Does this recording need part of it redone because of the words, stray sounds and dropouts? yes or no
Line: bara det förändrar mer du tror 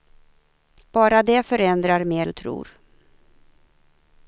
no